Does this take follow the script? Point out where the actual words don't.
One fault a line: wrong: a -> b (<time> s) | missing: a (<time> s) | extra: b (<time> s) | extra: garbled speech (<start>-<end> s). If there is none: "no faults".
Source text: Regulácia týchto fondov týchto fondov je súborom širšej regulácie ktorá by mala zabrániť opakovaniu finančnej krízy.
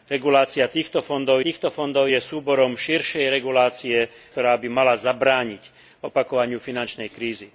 no faults